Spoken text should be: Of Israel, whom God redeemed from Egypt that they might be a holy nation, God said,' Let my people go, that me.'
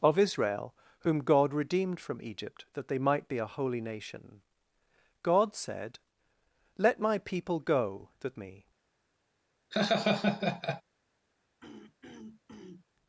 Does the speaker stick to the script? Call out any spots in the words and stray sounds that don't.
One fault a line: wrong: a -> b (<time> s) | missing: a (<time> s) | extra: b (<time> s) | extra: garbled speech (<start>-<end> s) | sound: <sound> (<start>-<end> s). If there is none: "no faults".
sound: laugh (9.7-10.8 s)
sound: throat clearing (11.6-12.9 s)